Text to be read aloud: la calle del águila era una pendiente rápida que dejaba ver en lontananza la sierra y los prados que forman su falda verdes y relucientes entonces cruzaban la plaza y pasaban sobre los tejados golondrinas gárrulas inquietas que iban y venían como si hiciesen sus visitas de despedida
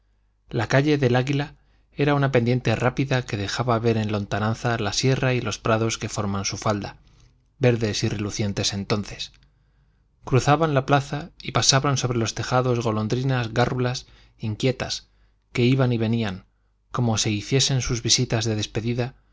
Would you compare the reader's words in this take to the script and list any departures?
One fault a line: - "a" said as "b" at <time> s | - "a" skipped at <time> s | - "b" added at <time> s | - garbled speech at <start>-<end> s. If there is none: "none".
none